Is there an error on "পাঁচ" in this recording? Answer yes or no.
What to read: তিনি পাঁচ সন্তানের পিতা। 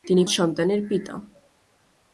yes